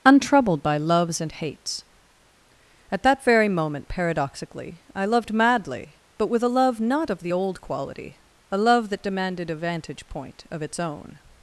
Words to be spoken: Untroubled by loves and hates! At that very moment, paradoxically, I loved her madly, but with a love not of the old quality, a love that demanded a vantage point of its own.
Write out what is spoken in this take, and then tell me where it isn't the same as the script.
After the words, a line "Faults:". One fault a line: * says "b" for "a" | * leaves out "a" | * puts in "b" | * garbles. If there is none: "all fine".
Untroubled by loves and hates! At that very moment, paradoxically, I loved madly, but with a love not of the old quality, a love that demanded a vantage point of its own.
Faults:
* leaves out "her"